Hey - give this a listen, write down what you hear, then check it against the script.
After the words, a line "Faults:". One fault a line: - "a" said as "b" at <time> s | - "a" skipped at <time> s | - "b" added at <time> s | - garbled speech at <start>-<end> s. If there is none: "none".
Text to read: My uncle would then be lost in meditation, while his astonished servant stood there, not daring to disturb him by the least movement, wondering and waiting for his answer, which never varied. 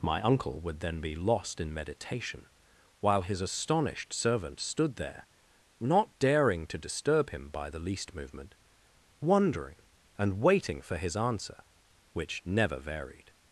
My uncle would then be lost in meditation, while his astonished servant stood there, not daring to disturb him by the least movement, wondering and waiting for his answer, which never varied.
Faults:
none